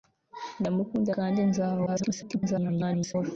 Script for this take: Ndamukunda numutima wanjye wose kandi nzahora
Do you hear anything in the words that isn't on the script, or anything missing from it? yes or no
yes